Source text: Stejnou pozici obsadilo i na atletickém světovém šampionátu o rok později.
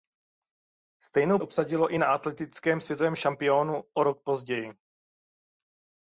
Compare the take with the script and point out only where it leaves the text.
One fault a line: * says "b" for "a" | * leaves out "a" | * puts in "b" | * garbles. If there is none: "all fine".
* leaves out "pozici"